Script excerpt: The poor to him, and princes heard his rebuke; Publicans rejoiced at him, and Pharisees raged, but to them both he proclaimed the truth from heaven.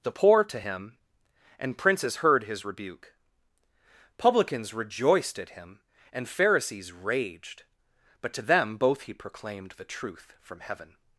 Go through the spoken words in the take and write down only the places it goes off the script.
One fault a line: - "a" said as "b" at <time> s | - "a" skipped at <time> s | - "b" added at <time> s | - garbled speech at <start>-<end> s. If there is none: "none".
none